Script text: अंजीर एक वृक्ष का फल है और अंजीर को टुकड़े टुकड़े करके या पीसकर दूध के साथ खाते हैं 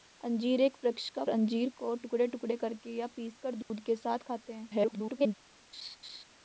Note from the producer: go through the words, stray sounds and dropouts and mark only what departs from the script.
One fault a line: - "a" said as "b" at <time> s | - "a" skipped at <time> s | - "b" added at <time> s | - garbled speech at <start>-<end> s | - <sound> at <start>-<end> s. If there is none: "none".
- "फल है और" skipped at 1.2 s
- dropout at 3.6-3.7 s
- garbled speech at 4.7-5.3 s
- laugh at 5.7-6.2 s